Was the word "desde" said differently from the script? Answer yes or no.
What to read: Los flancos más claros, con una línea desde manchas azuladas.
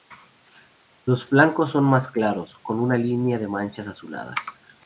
yes